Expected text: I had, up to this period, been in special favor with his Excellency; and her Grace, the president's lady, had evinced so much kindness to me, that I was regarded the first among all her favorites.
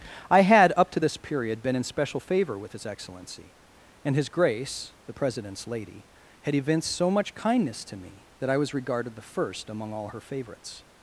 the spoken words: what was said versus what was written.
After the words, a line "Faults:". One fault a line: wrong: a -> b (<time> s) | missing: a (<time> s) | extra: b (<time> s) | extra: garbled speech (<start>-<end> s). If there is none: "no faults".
I had, up to this period, been in special favor with his Excellency; and his Grace, the president's lady, had evinced so much kindness to me, that I was regarded the first among all her favorites.
Faults:
wrong: her -> his (4.1 s)